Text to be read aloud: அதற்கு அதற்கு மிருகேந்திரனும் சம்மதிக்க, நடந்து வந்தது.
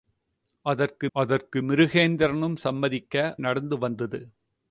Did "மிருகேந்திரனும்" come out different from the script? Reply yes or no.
no